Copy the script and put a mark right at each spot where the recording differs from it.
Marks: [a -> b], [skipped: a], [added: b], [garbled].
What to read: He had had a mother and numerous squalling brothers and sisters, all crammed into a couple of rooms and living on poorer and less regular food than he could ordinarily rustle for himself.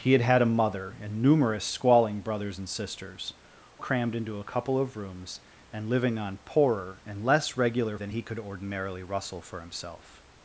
He had had a mother and numerous squalling brothers and sisters, [skipped: all] crammed into a couple of rooms and living on poorer and less regular [skipped: food] than he could ordinarily rustle for himself.